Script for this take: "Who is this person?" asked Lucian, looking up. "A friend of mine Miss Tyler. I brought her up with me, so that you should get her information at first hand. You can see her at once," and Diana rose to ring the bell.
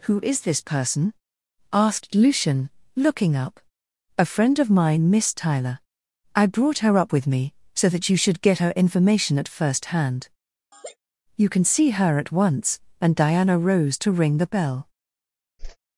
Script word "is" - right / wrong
right